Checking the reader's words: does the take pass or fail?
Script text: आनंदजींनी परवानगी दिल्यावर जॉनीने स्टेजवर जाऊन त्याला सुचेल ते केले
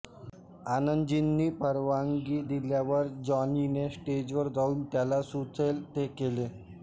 pass